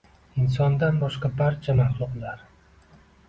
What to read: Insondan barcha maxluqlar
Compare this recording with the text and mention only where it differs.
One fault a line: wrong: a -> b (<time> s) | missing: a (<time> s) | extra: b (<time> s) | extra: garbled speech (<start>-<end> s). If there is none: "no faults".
extra: boshqa (1.0 s)